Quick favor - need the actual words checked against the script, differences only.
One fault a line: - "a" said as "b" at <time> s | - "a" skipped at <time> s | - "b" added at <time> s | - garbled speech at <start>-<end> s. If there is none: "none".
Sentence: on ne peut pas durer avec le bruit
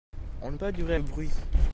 - "peut" skipped at 0.6 s
- "avec" skipped at 1.0 s